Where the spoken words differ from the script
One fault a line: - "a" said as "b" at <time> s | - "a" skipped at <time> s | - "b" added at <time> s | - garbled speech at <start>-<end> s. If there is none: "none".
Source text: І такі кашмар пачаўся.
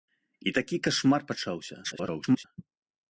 - garbled speech at 1.8-2.4 s